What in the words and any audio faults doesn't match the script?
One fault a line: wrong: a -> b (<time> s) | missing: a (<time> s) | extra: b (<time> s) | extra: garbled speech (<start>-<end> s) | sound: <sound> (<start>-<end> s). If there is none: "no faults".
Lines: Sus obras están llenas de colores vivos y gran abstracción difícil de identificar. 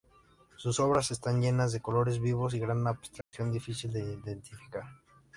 sound: dropout (3.2-3.3 s)